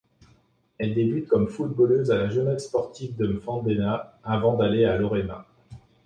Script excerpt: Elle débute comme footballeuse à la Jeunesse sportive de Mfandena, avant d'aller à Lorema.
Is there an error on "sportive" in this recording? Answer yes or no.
no